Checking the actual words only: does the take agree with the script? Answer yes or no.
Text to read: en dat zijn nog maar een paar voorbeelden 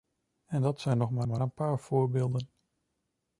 no